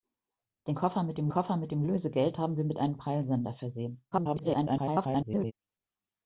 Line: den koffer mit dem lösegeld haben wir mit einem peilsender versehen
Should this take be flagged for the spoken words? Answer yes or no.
yes